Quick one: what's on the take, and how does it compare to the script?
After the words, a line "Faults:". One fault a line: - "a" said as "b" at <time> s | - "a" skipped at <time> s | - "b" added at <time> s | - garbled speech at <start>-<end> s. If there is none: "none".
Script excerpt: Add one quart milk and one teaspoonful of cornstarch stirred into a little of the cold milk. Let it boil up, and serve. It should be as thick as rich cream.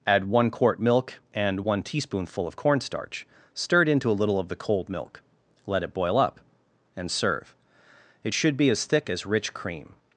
Add one quart milk and one teaspoonful of cornstarch stirred into a little of the cold milk. Let it boil up, and serve. It should be as thick as rich cream.
Faults:
none